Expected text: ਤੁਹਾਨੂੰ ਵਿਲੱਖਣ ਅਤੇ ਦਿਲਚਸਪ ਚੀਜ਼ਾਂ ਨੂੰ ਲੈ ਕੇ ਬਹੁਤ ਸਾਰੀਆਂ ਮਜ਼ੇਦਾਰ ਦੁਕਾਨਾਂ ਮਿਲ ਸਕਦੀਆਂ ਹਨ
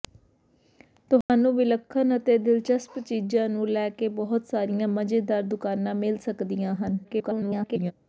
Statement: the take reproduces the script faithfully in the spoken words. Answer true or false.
false